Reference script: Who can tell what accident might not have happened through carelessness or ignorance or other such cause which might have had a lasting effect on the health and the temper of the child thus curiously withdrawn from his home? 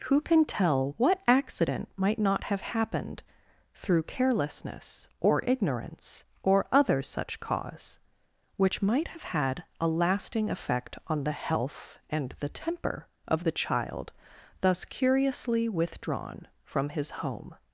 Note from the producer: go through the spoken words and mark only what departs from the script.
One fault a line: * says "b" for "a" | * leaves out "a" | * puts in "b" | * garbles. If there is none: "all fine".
all fine